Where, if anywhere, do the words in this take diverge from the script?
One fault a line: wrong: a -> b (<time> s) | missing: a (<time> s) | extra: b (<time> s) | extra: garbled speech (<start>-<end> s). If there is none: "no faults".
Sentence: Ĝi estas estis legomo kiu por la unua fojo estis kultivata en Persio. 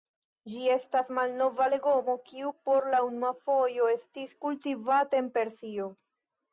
wrong: estis -> malnova (1.2 s)